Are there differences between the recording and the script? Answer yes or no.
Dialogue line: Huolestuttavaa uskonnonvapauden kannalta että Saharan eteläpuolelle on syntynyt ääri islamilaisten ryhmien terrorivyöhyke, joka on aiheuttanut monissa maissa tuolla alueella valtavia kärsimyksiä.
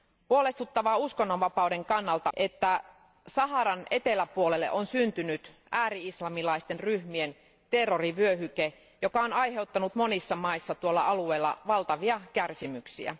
no